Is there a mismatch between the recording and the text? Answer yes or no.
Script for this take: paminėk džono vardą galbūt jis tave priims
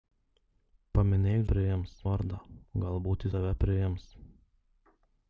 yes